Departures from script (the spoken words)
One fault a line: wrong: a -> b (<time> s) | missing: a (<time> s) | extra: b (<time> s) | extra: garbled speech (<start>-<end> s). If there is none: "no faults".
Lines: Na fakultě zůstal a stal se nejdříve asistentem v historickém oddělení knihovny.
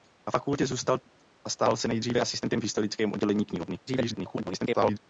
extra: garbled speech (3.9-5.0 s)